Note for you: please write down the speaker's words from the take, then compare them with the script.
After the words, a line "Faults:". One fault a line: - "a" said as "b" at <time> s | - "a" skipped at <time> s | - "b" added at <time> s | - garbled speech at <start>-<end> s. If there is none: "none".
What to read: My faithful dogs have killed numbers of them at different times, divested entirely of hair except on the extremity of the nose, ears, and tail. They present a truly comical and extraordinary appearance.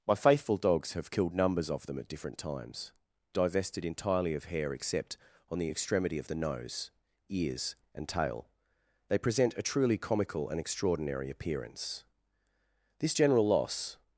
My faithful dogs have killed numbers of them at different times, divested entirely of hair except on the extremity of the nose, ears, and tail. They present a truly comical and extraordinary appearance. This general loss
Faults:
- "This general loss" added at 13.0 s